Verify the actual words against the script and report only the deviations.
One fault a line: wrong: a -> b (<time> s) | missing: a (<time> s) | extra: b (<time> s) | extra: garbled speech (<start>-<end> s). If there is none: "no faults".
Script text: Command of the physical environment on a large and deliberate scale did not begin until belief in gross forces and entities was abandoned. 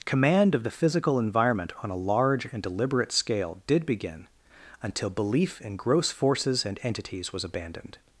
missing: not (3.9 s)